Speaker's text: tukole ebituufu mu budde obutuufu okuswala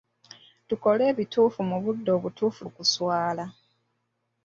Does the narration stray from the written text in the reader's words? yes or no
no